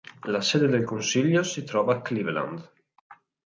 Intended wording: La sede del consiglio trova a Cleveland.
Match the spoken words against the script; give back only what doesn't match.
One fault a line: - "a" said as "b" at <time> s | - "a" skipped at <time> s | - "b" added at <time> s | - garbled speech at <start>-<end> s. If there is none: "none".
- "si" added at 1.4 s